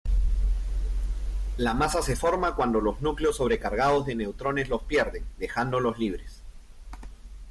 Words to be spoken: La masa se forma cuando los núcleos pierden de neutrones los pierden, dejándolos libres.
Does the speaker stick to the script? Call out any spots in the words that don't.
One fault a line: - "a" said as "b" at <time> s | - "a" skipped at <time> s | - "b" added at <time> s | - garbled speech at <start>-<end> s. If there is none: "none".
- "pierden" said as "sobrecargados" at 3.4 s